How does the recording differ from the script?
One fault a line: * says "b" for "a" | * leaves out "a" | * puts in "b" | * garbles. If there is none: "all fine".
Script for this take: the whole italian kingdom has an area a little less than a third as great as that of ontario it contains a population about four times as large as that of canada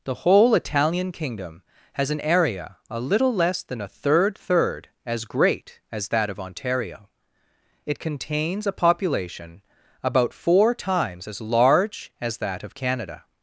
* puts in "third"